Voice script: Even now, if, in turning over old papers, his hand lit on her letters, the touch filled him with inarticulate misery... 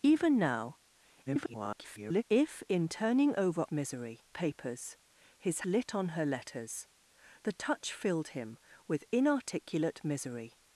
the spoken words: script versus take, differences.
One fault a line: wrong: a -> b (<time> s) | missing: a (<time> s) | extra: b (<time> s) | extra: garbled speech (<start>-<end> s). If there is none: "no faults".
extra: garbled speech (1.3-2.2 s)
wrong: old -> misery (3.7 s)
missing: hand (5.6 s)